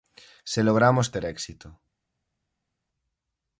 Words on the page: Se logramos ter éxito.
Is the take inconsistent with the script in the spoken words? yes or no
no